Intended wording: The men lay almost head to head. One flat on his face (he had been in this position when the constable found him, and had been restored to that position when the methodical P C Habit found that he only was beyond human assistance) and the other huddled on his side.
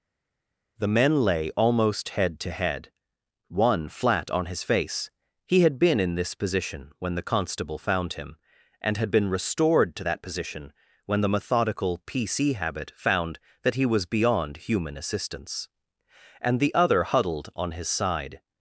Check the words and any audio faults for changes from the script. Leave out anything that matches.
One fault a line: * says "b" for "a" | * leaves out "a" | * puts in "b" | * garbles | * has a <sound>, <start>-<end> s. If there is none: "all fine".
* leaves out "only"